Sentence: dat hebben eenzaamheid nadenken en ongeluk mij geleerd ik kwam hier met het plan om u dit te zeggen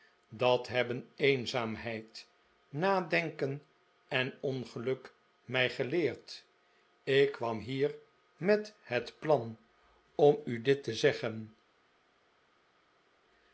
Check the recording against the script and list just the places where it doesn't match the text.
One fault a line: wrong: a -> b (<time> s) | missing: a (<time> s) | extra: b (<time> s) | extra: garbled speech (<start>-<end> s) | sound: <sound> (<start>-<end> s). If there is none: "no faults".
no faults